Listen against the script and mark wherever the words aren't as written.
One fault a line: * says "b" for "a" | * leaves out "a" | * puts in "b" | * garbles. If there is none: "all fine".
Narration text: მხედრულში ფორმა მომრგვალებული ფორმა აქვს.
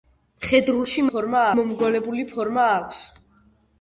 all fine